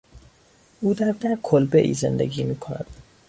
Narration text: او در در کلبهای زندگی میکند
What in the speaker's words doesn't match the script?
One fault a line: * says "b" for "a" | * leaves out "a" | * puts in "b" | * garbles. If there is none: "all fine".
all fine